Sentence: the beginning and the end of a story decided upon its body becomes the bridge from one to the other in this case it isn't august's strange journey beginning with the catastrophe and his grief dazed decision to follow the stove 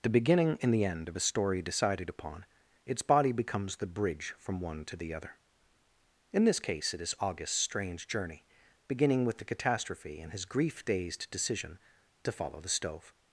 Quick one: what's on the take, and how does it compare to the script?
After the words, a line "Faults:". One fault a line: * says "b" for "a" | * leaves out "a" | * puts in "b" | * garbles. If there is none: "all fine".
the beginning and the end of a story decided upon its body becomes the bridge from one to the other in this case it is august's strange journey beginning with the catastrophe and his grief dazed decision to follow the stove
Faults:
* says "is" for "isn't"